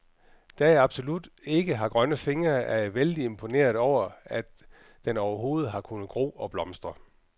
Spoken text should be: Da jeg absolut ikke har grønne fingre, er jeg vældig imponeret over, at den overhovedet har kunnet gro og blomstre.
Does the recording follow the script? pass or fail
pass